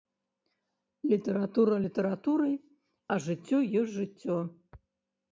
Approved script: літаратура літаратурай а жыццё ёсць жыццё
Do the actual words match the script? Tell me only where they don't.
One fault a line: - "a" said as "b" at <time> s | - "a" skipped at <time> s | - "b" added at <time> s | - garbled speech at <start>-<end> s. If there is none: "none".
none